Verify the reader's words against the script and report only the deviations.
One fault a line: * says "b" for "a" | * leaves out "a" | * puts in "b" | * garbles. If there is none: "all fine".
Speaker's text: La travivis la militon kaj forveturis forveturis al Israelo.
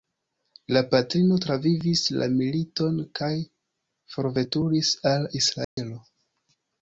* puts in "patrino"
* leaves out "forveturis"